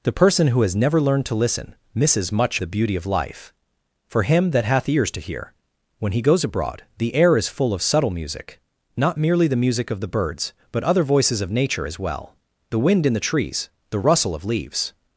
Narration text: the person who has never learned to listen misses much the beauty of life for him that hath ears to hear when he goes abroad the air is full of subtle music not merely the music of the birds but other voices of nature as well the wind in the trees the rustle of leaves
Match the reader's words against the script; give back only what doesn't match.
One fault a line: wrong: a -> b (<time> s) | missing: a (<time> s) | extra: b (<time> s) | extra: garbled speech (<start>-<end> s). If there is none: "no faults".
no faults